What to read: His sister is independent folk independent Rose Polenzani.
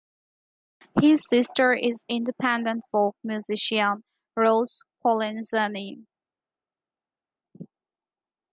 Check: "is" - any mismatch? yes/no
no